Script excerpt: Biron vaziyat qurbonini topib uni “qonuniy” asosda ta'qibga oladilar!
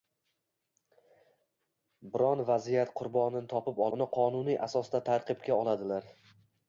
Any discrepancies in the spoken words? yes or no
no